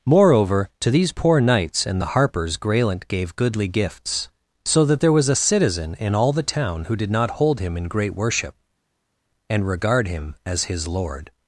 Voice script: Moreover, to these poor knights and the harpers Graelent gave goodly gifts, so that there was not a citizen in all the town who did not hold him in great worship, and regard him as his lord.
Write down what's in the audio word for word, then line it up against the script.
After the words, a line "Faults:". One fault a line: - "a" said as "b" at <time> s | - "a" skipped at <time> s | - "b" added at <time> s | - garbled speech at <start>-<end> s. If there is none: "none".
Moreover, to these poor knights and the harpers Graelent gave goodly gifts, so that there was a citizen in all the town who did not hold him in great worship, and regard him as his lord.
Faults:
- "not" skipped at 5.3 s